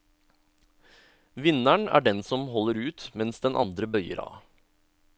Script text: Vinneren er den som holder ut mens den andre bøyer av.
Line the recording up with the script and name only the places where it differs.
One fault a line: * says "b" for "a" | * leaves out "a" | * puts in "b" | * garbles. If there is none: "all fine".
all fine